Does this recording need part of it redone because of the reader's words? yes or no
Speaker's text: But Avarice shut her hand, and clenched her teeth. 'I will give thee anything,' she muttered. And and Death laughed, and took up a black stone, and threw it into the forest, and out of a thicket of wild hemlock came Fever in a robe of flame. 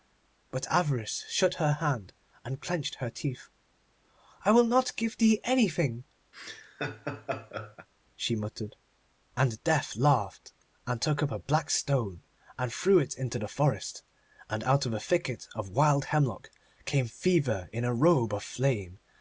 yes